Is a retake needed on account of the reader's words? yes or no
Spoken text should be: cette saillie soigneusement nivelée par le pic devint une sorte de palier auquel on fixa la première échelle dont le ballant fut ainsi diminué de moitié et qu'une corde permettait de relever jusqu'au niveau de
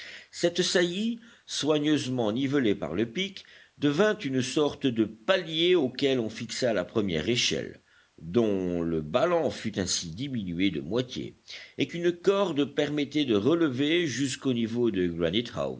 no